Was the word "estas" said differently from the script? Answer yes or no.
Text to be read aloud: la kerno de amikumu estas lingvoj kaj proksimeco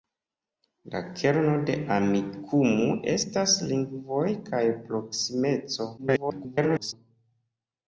no